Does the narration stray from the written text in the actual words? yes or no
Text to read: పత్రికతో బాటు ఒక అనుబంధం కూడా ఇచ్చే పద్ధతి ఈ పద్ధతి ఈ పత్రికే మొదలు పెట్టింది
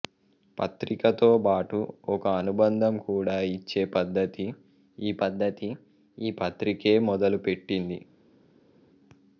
no